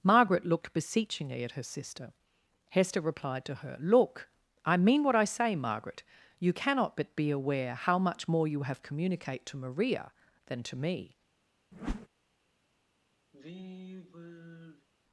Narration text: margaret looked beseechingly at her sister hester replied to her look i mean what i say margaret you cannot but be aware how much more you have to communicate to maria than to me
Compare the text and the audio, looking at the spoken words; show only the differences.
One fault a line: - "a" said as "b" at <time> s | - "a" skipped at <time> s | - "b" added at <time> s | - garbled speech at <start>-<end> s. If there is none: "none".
- "to" skipped at 8.8 s